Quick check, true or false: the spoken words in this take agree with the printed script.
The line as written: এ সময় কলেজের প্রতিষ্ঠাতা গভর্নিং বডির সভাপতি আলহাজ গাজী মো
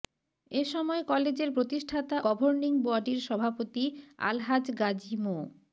true